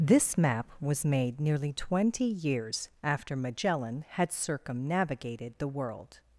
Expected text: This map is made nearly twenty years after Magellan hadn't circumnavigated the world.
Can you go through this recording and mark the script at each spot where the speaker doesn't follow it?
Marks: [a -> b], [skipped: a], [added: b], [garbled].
This map [is -> was] made nearly twenty years after Magellan [hadn't -> had] circumnavigated the world.